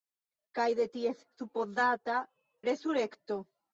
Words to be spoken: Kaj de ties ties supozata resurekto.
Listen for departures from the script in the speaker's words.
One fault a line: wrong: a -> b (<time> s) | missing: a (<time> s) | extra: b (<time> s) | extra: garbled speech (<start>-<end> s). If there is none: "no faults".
missing: ties (1.2 s)